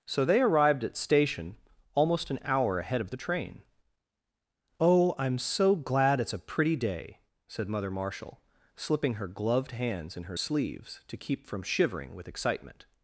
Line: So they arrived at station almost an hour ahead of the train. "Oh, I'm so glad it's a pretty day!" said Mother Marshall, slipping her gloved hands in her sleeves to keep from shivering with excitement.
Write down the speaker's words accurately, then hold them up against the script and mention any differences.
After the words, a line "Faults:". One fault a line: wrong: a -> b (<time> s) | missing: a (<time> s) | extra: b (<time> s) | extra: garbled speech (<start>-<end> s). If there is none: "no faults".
So they arrived at station almost an hour ahead of the train. "Oh, I'm so glad it's a pretty day!" said Mother Marshall, slipping her gloved hands in her sleeves to keep from shivering with excitement.
Faults:
no faults